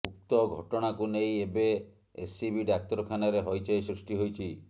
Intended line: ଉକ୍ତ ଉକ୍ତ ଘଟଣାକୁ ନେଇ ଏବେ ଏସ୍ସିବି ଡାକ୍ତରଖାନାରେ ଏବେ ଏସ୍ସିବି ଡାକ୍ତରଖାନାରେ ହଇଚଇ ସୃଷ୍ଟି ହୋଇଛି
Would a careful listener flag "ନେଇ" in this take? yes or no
no